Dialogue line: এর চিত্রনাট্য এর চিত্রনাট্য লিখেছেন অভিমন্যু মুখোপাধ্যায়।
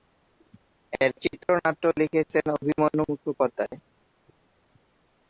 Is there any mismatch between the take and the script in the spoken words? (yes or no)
yes